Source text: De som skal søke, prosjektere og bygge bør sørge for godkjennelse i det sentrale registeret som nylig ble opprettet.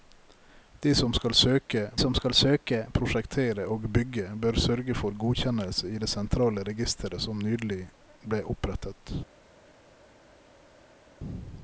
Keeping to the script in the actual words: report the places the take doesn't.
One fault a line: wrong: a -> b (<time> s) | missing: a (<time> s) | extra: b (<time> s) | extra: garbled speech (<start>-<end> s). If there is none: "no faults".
extra: som skal søke (2.0 s)